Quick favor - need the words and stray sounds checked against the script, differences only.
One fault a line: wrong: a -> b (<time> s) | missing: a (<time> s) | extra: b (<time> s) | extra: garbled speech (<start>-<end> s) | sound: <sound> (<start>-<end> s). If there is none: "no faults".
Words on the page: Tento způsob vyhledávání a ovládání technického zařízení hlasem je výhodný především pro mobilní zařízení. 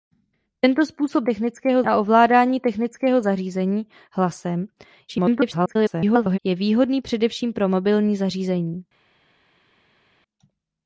wrong: vyhledávání -> technického (1.2 s)
extra: garbled speech (5.1-6.4 s)